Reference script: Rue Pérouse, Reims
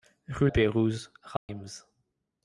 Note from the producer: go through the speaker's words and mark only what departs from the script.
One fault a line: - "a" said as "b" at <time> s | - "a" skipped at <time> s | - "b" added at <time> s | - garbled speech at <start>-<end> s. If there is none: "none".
none